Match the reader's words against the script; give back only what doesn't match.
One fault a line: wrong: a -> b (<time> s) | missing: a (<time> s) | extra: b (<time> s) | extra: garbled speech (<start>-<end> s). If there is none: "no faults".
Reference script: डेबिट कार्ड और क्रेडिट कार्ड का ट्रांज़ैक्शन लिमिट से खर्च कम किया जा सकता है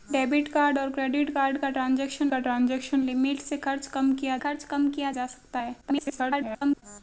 extra: का ट्रांज़ैक्शन (2.3 s)
extra: खर्च कम किया (4.4 s)
extra: garbled speech (5.8-6.8 s)